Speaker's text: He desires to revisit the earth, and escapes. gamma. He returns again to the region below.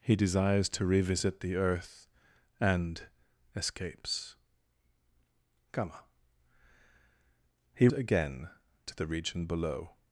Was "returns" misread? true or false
true